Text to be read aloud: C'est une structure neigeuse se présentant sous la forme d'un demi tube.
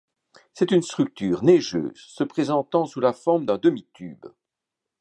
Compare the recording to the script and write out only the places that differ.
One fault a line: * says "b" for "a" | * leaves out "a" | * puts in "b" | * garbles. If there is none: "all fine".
all fine